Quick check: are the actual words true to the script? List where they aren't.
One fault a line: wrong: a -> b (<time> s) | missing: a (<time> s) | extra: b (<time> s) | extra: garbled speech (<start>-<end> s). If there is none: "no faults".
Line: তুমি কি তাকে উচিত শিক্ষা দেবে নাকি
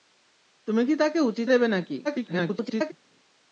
missing: শিক্ষা (1.5 s)
extra: garbled speech (2.0-2.9 s)